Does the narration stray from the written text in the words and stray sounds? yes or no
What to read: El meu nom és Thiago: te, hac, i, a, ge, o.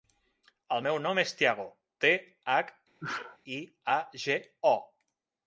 yes